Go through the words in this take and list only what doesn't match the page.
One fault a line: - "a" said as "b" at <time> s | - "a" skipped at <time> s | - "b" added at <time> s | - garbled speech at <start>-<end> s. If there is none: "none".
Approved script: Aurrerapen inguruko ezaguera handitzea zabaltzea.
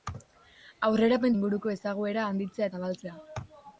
none